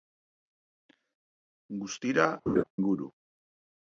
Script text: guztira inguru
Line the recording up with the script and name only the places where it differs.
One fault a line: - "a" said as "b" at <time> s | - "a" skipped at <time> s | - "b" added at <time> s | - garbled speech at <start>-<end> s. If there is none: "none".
none